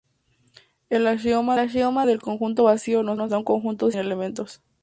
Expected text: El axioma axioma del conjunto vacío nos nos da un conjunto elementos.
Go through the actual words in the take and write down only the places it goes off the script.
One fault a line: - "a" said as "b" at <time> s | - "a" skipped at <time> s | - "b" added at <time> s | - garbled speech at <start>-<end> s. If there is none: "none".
none